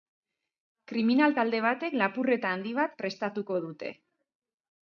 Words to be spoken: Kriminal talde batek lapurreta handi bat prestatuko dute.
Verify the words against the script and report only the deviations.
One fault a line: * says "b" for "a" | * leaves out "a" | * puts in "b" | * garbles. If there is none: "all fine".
all fine